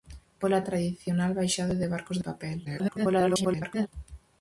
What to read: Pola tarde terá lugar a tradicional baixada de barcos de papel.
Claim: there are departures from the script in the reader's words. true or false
true